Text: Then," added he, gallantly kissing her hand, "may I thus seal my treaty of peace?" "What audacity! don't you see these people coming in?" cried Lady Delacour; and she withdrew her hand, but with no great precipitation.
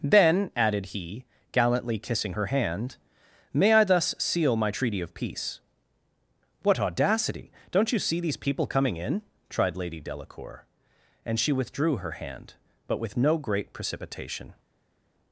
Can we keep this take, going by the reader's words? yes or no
no